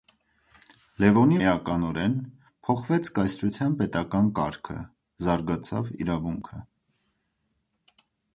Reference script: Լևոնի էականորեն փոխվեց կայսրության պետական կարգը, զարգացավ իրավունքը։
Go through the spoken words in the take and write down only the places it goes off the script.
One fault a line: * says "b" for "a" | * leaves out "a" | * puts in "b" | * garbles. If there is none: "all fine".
all fine